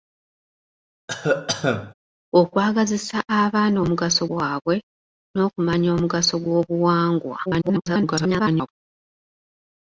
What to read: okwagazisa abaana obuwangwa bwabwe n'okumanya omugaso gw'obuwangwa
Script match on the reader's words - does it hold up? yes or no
no